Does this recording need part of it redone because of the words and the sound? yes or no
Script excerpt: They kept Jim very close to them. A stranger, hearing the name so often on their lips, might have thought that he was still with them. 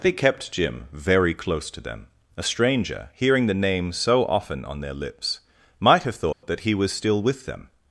yes